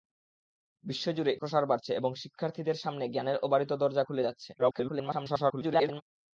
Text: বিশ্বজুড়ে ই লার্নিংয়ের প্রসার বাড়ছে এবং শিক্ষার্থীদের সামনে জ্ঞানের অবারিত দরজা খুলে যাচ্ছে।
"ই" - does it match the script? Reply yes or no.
no